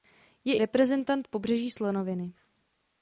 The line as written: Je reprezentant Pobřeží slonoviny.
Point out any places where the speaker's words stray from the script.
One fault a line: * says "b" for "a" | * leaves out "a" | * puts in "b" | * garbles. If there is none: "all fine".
all fine